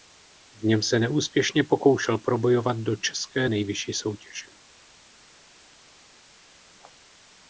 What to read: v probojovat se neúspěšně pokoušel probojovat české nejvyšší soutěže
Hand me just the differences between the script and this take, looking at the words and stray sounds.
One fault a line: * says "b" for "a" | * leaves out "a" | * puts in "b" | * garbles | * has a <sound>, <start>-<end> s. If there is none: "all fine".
* says "něm" for "probojovat"
* puts in "do"